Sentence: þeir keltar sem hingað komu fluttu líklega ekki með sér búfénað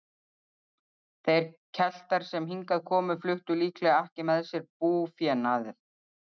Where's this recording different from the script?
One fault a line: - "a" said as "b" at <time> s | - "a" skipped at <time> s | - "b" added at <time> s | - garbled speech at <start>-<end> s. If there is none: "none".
none